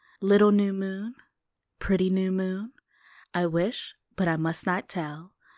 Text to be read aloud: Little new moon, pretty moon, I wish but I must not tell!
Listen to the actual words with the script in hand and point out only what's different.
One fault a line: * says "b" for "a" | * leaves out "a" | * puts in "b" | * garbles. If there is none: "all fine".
* puts in "new"